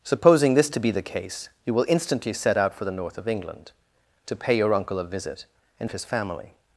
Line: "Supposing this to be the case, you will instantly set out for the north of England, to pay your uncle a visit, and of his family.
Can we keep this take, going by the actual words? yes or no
yes